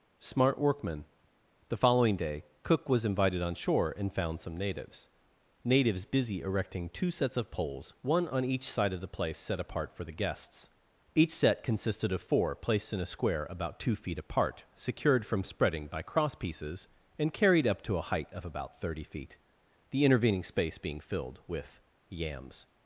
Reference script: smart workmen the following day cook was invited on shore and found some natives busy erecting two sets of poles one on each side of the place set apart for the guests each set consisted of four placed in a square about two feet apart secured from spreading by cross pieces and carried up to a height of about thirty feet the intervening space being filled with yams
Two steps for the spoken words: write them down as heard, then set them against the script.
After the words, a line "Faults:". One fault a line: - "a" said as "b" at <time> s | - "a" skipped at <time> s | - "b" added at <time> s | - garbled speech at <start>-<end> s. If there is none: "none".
smart workmen the following day cook was invited on shore and found some natives natives busy erecting two sets of poles one on each side of the place set apart for the guests each set consisted of four placed in a square about two feet apart secured from spreading by cross pieces and carried up to a height of about thirty feet the intervening space being filled with yams
Faults:
- "natives" added at 5.6 s